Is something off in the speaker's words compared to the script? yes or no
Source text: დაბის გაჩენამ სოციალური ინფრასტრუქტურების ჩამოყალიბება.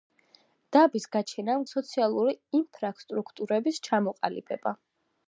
no